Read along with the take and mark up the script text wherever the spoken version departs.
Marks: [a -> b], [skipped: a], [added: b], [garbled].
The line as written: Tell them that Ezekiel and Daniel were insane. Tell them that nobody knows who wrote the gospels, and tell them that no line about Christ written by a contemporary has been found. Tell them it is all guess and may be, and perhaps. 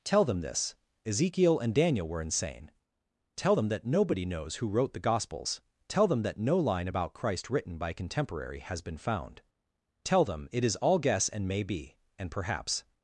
Tell them [that -> this] Ezekiel and Daniel were insane. Tell them that nobody knows who wrote the gospels, [skipped: and] tell them that no line about Christ written by a contemporary has been found. Tell them it is all guess and may be, and perhaps.